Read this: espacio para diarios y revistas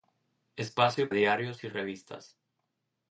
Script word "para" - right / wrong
wrong